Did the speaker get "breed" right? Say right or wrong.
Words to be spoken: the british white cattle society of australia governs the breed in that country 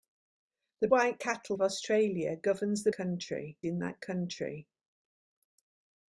wrong